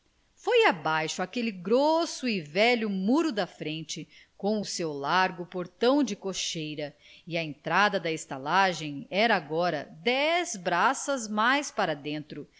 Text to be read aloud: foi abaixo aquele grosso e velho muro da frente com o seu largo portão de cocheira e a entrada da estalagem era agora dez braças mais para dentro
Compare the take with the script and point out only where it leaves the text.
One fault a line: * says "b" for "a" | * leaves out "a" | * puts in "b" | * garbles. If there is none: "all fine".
all fine